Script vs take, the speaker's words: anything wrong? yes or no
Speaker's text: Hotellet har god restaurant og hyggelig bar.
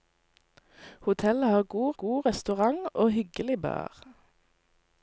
yes